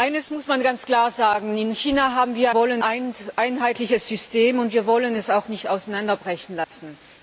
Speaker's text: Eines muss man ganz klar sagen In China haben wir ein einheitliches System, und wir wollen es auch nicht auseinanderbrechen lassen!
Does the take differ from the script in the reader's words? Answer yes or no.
yes